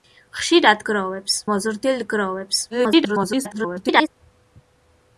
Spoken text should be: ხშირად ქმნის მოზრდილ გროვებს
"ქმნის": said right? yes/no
no